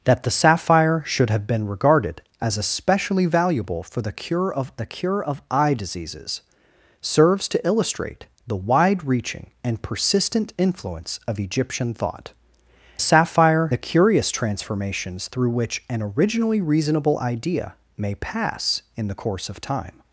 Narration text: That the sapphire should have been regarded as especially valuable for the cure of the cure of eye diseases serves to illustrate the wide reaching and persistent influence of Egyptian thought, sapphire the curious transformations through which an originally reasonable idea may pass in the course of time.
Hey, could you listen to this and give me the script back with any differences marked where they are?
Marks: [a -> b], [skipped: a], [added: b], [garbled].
That the sapphire should have been regarded as especially valuable for the cure of the cure of eye diseases serves to illustrate the wide reaching and persistent influence of Egyptian thought, sapphire the curious transformations through which an originally reasonable idea may pass in the course of time.